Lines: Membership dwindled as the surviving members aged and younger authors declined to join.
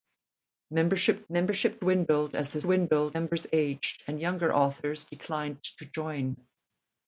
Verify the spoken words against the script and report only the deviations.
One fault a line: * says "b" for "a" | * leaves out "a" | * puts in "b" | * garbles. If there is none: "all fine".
* puts in "membership"
* says "dwindled" for "surviving"